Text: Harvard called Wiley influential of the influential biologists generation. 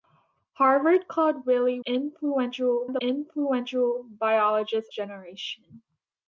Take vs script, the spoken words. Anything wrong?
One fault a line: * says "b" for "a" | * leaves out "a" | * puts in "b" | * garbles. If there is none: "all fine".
all fine